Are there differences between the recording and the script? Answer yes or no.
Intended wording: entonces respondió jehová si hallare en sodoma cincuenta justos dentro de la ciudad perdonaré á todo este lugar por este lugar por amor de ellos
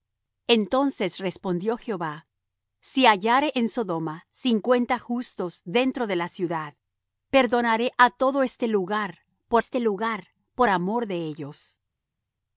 no